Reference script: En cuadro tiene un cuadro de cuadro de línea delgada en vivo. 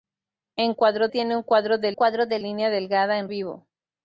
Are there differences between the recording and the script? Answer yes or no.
no